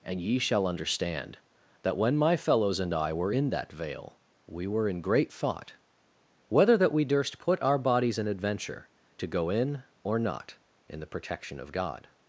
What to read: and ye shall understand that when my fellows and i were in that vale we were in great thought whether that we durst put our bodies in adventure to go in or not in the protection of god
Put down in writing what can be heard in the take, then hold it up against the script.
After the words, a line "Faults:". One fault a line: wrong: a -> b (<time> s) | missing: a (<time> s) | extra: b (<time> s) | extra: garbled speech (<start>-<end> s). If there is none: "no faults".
and ye shall understand that when my fellows and i were in that vale we were in great thought whether that we durst put our bodies in adventure to go in or not in the protection of god
Faults:
no faults